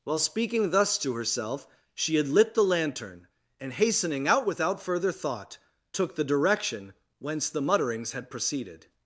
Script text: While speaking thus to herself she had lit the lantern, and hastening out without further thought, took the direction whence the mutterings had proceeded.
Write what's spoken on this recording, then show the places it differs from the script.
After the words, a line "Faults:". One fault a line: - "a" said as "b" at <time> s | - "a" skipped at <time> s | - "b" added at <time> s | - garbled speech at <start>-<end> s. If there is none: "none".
While speaking thus to herself she had lit the lantern, and hastening out without further thought, took the direction whence the mutterings had proceeded.
Faults:
none